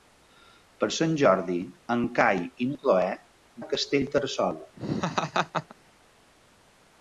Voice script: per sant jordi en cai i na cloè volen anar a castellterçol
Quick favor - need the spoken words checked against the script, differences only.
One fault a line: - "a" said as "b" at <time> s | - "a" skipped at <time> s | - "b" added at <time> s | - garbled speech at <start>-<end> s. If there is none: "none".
- "volen anar" skipped at 3.1 s